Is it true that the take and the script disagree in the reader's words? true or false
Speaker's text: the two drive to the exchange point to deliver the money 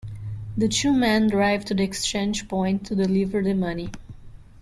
true